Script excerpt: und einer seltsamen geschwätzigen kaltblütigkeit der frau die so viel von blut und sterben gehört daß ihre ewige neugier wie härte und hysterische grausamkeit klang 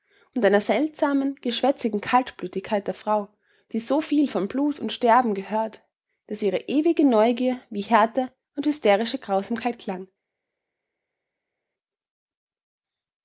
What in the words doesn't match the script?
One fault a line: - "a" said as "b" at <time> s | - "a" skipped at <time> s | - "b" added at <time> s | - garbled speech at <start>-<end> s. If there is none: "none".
none